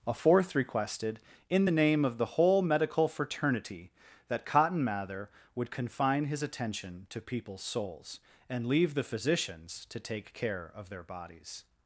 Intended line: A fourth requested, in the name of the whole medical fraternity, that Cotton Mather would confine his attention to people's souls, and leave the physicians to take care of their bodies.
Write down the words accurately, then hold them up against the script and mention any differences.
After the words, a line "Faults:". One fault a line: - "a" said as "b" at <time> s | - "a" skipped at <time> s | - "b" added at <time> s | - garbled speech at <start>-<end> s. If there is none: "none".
A fourth requested, in the name of the whole medical fraternity, that Cotton Mather would confine his attention to people's souls, and leave the physicians to take care of their bodies.
Faults:
none